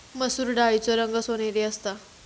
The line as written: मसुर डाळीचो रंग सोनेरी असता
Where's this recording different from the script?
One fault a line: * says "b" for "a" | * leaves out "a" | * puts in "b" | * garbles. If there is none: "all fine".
all fine